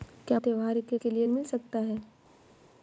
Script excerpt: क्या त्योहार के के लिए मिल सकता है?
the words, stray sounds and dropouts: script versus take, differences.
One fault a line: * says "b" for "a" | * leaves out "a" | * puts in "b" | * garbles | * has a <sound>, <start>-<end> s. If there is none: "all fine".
all fine